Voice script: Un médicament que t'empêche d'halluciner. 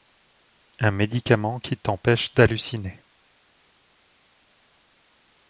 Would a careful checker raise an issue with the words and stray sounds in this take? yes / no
yes